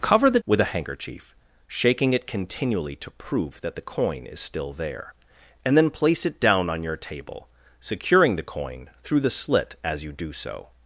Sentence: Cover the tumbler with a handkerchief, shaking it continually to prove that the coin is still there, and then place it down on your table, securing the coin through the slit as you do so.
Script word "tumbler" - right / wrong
wrong